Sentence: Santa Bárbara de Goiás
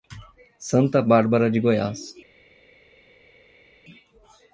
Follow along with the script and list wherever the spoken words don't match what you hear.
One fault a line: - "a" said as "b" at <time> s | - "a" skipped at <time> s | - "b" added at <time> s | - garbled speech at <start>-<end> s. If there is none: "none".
none